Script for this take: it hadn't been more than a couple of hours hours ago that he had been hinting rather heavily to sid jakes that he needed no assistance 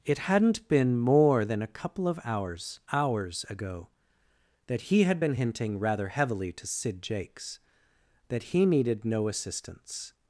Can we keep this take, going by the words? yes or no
yes